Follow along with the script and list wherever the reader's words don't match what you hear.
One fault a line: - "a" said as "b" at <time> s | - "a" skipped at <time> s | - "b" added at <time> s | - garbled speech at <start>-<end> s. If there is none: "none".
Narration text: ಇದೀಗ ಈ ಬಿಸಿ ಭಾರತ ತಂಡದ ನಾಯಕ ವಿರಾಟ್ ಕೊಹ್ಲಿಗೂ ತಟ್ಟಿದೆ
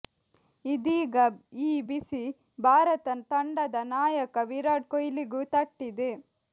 none